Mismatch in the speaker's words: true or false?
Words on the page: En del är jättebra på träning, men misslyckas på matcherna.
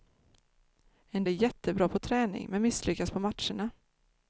true